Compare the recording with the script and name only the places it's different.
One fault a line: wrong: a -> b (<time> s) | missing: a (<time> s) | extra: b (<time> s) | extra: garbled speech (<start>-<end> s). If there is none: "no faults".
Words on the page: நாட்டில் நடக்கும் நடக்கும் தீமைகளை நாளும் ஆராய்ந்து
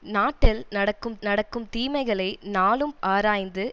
no faults